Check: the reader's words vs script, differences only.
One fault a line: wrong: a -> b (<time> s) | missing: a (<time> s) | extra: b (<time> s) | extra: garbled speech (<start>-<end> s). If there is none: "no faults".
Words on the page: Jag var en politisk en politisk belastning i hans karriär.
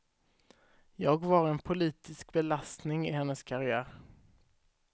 missing: en politisk (2.3 s)
wrong: hans -> hennes (3.1 s)